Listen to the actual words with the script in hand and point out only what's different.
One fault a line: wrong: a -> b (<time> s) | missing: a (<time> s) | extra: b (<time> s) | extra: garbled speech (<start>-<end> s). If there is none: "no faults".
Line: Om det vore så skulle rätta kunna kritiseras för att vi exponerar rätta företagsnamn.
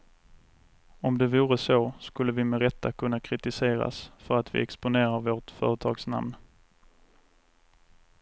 extra: vi med (2.3 s)
wrong: rätta -> vårt (5.2 s)